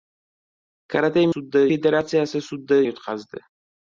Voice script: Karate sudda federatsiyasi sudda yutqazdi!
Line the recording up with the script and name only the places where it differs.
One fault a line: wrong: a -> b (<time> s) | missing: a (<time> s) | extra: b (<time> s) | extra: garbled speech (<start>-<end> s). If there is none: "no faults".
no faults